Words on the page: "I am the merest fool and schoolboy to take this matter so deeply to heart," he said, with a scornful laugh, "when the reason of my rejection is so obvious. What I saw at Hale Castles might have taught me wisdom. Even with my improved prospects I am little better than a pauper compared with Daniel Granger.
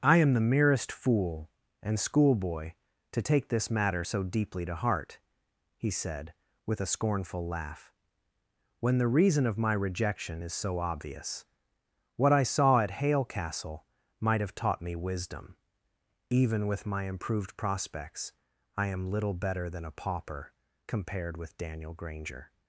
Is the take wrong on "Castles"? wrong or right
wrong